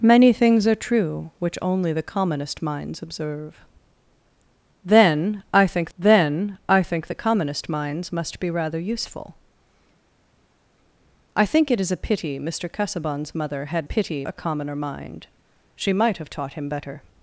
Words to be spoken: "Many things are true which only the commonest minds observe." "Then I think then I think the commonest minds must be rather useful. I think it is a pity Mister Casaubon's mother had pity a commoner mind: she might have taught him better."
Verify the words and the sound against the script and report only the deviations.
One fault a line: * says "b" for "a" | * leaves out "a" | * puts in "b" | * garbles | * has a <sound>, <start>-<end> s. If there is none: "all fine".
all fine